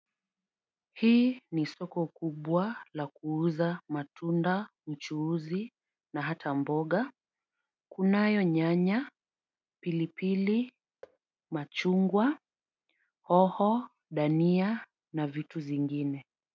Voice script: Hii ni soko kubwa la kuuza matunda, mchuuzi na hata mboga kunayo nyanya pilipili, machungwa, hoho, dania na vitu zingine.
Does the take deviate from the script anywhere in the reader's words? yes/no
no